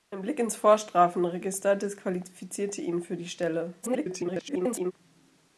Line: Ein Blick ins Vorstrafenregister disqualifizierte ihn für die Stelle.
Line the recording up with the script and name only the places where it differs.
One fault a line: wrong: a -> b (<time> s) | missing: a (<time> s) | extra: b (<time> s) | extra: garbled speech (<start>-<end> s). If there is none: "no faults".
extra: garbled speech (3.8-4.9 s)